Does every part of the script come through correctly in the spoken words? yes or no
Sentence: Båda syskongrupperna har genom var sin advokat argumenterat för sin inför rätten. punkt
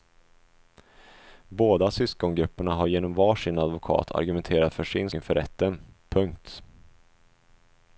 yes